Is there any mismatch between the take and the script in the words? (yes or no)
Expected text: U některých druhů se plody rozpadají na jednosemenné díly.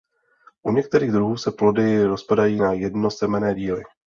no